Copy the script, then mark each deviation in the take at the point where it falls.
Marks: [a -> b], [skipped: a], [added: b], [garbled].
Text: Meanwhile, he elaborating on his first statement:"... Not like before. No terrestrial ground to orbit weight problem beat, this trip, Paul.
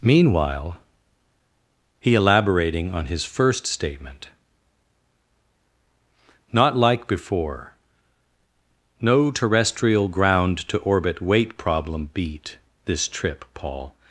Meanwhile, he elaborating on his first statement:"... Not like before. No terrestrial ground to orbit weight problem beat, this trip, Paul.